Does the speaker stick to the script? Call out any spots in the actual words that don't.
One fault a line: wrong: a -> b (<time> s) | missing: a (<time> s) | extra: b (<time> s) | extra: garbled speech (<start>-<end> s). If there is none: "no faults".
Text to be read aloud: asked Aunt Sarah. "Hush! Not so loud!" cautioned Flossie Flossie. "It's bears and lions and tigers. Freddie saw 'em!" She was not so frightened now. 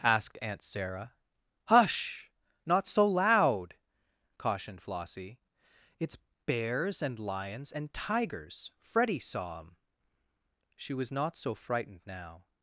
missing: Flossie (5.4 s)